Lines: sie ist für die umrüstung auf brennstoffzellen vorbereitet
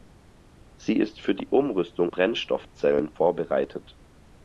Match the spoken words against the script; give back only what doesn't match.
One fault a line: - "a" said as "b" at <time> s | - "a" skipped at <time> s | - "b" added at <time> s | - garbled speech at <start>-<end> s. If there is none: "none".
- "auf" skipped at 2.1 s